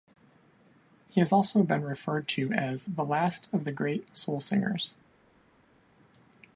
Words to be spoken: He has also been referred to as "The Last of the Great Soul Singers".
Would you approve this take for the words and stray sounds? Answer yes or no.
yes